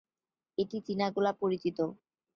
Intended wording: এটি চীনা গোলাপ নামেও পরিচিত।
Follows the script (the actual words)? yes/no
no